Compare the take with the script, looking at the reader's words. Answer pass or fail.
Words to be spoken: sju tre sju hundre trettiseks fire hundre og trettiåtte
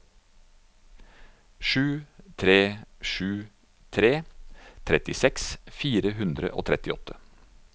fail